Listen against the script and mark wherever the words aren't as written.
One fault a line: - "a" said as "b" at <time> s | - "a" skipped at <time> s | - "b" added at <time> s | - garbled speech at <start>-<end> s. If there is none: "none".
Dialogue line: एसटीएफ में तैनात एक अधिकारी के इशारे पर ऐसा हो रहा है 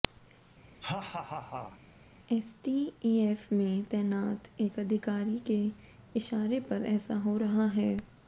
none